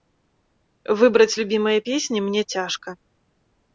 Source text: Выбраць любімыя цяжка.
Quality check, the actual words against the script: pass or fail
fail